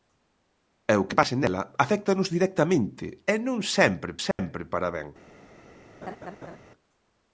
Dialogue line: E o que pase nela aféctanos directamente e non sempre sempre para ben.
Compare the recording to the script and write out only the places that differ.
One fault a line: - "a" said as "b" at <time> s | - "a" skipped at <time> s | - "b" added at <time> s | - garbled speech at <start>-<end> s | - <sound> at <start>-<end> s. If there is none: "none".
- dropout at 4.3-4.4 s
- laugh at 6.0-6.6 s